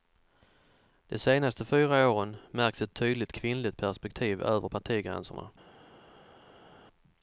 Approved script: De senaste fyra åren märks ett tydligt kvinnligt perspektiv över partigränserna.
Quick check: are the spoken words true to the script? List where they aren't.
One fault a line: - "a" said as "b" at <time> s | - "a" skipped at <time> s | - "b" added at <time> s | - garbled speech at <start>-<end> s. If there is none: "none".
none